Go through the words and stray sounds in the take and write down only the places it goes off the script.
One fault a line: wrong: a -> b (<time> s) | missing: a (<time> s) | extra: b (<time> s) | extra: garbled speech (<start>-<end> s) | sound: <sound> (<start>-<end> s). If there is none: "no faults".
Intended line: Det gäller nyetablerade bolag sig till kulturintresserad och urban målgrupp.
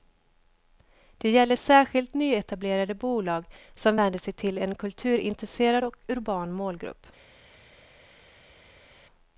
extra: särskilt (1.6 s)
extra: som vänder (3.8 s)
extra: en (4.6 s)